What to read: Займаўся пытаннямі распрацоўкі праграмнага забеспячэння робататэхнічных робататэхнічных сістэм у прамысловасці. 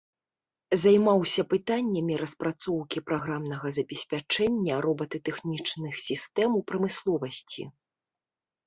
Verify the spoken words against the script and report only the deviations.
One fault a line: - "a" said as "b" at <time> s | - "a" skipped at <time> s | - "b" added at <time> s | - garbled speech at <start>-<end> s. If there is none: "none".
- "робататэхнічных" skipped at 5.9 s